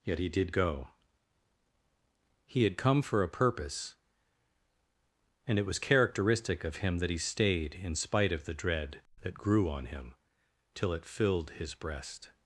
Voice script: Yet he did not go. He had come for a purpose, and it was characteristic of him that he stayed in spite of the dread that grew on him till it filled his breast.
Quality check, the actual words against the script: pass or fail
fail